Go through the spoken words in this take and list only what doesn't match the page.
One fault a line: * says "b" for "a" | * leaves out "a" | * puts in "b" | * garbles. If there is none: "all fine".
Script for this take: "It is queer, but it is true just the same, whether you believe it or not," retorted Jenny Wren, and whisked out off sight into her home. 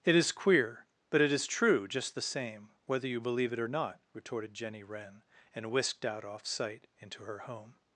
all fine